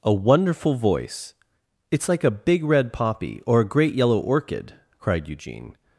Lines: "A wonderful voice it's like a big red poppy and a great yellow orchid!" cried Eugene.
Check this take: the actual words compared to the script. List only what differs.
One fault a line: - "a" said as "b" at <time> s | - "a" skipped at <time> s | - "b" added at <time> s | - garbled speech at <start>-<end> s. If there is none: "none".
- "and" said as "or" at 3.5 s